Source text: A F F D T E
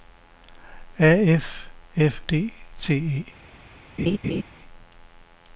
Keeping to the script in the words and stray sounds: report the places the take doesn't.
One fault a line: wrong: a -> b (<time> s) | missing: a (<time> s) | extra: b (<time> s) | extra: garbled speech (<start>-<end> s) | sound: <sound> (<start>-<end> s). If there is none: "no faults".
sound: laugh (4.0-4.4 s)